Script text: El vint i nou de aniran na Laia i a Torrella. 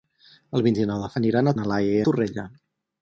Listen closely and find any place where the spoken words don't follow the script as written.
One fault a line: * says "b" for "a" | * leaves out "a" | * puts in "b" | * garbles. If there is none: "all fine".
all fine